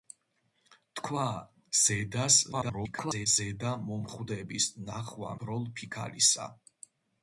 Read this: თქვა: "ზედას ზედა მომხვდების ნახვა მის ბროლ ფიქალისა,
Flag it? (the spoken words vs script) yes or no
yes